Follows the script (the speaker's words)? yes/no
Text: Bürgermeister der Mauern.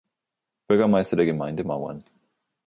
no